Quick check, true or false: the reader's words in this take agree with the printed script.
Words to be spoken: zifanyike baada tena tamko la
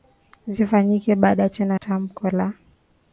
true